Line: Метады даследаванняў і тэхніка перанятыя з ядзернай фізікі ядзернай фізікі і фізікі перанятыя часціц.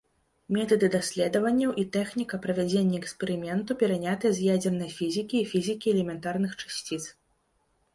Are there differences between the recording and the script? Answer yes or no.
yes